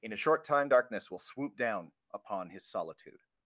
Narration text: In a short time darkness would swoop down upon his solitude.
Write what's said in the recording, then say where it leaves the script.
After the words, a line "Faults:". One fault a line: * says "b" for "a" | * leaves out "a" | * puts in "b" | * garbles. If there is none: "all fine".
In a short time darkness will swoop down upon his solitude.
Faults:
* says "will" for "would"